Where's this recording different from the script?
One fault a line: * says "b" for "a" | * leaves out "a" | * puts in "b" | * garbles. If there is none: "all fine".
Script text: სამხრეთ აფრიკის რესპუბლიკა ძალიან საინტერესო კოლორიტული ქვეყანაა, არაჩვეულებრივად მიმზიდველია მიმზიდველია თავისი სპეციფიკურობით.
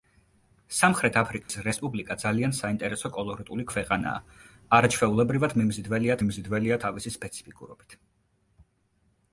all fine